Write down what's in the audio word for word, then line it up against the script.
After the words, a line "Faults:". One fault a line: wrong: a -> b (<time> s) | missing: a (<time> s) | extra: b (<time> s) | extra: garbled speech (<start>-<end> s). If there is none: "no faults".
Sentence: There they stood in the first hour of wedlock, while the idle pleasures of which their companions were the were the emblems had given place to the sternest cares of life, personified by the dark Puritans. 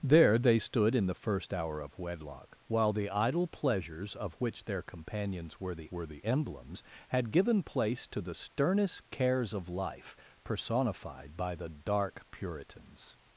There they stood in the first hour of wedlock, while the idle pleasures of which their companions were the were the emblems had given place to the sternest cares of life, personified by the dark Puritans.
Faults:
no faults